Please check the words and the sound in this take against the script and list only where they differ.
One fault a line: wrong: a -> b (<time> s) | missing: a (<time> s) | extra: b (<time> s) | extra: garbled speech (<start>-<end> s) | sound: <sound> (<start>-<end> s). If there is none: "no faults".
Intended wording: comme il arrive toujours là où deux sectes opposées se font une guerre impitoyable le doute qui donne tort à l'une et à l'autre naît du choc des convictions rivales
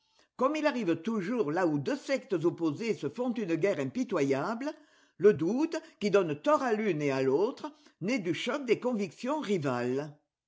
no faults